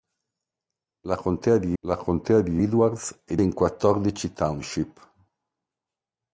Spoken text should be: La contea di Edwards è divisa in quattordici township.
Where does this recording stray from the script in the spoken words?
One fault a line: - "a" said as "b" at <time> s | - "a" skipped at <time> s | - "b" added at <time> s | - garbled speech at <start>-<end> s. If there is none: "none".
- "la contea di" added at 1.8 s
- "divisa" skipped at 3.4 s